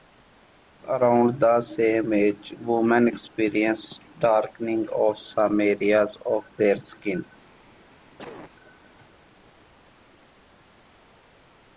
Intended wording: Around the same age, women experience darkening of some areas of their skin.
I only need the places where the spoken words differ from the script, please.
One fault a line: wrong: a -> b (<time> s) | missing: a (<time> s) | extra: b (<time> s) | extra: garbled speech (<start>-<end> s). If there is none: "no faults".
no faults